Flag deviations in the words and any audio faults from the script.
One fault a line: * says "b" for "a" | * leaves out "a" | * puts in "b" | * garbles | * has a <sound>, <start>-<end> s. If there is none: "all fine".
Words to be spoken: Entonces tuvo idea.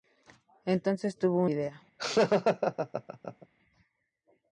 * has a laugh, 2.0-3.5 s